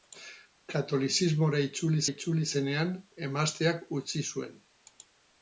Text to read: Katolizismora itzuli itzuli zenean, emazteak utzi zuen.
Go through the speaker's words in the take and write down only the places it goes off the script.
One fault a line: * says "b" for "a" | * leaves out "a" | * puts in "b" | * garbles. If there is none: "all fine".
all fine